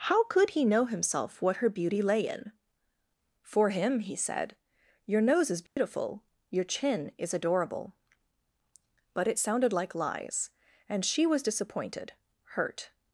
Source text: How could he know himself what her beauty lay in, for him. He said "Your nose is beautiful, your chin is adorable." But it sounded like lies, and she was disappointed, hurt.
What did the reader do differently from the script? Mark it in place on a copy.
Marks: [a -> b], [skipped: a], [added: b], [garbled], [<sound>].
How could he know himself what her beauty lay in, for him. He said "Your nose is beautiful, [dropout] your chin is adorable." But it sounded like lies, and she was disappointed, hurt.